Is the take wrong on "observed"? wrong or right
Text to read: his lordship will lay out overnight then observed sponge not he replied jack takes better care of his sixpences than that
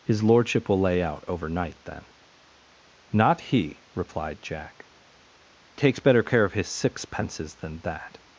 wrong